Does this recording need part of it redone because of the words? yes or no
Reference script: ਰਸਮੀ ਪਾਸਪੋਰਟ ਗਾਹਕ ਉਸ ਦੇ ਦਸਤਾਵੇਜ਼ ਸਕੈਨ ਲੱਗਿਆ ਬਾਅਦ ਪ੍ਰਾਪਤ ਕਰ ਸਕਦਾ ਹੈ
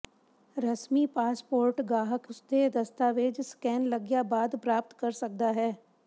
no